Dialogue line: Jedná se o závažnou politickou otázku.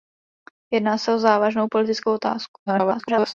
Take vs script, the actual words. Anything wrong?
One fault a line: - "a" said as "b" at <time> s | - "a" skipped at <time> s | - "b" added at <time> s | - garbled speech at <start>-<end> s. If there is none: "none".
- garbled speech at 2.7-3.3 s